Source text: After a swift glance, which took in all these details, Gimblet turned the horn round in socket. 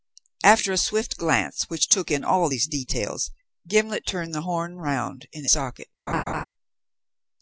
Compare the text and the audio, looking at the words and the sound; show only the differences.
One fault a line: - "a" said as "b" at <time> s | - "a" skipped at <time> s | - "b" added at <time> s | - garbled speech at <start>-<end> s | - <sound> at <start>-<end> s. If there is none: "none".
- laugh at 6.1-6.4 s